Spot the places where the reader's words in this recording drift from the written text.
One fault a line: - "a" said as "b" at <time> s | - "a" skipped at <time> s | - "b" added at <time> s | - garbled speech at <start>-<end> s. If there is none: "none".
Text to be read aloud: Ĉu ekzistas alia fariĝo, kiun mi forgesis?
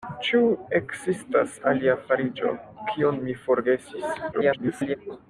- garbled speech at 4.3-5.0 s